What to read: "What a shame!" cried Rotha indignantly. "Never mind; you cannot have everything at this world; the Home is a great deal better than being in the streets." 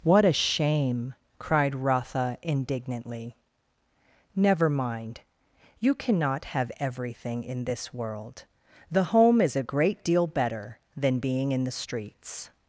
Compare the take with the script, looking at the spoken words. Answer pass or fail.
fail